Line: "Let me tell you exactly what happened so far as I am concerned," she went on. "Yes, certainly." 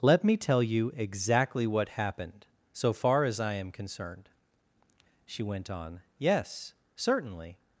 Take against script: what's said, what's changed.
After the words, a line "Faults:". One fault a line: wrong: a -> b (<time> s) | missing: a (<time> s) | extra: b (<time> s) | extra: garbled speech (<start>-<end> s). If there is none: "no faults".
"Let me tell you exactly what happened so far as I am concerned," she went on. "Yes, certainly."
Faults:
no faults